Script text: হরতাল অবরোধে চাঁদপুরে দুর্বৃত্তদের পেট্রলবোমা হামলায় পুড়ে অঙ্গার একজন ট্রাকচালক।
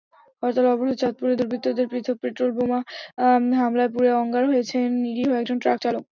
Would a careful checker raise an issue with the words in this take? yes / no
yes